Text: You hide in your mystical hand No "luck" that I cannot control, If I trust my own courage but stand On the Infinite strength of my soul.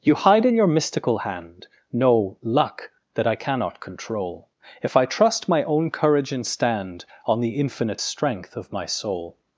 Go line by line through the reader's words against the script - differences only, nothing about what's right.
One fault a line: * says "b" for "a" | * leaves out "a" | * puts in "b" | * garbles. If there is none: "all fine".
* says "and" for "but"